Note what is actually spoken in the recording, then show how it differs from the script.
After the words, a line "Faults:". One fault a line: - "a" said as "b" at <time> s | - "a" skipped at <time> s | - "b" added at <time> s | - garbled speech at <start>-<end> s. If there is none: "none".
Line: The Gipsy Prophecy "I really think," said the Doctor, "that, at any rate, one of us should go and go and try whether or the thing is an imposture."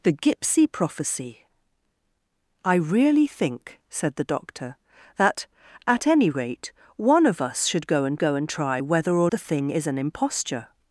The Gipsy Prophecy "I really think," said the Doctor, "that, at any rate, one of us should go and go and try whether or the thing is an imposture."
Faults:
none